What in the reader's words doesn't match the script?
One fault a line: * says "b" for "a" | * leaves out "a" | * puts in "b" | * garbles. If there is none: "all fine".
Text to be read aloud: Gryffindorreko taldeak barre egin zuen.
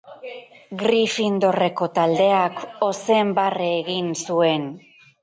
* puts in "ozen"